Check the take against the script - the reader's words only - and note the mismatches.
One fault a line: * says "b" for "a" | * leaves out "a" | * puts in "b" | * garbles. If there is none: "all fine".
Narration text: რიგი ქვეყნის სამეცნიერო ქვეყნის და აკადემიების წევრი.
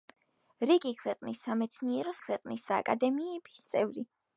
all fine